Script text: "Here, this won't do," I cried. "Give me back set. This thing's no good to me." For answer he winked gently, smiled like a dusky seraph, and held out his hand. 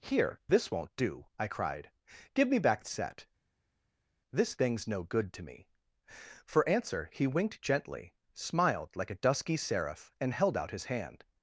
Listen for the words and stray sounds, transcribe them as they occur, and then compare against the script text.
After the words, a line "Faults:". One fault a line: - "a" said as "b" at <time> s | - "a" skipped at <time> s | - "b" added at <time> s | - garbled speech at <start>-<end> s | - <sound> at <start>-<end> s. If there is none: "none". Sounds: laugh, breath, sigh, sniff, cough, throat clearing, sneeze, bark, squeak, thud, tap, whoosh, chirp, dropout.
"Here, this won't do," I cried. "Give me back set. This thing's no good to me." For answer he winked gently, smiled like a dusky seraph, and held out his hand.
Faults:
none